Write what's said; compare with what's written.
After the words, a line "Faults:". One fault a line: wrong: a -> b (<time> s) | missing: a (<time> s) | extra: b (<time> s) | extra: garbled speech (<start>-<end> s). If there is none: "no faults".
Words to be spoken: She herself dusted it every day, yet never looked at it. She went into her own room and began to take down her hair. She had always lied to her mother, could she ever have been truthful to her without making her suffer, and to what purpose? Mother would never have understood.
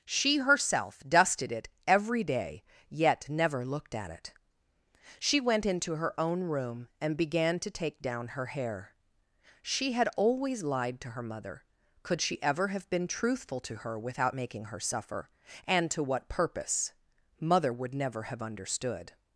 She herself dusted it every day, yet never looked at it. She went into her own room and began to take down her hair. She had always lied to her mother, could she ever have been truthful to her without making her suffer, and to what purpose? Mother would never have understood.
Faults:
no faults